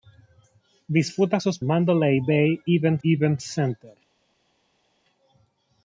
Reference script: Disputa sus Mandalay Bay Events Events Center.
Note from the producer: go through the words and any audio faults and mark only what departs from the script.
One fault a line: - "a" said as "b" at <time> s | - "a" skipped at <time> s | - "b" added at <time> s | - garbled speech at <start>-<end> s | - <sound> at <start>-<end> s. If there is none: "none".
none